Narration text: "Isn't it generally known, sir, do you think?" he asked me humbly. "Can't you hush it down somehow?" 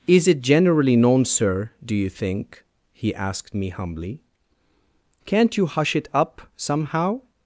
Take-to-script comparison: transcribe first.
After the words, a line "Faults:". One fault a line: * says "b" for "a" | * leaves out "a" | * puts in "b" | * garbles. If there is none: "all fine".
"Is it generally known, sir, do you think?" he asked me humbly. "Can't you hush it up somehow?"
Faults:
* says "Is" for "Isn't"
* says "up" for "down"